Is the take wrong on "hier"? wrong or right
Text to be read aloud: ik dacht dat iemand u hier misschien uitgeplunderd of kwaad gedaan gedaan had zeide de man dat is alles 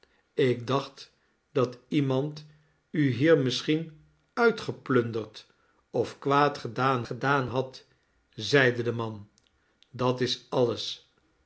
right